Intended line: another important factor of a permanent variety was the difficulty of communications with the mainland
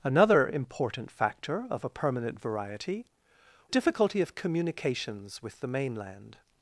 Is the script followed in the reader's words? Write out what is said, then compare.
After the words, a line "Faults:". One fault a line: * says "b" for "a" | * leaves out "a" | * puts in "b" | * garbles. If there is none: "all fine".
another important factor of a permanent variety difficulty of communications with the mainland
Faults:
* leaves out "was the"